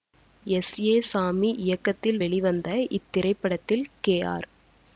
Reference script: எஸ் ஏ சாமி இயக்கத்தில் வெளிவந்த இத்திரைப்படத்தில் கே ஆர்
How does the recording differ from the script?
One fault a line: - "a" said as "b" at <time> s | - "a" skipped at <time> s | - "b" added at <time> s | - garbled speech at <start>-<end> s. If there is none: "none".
none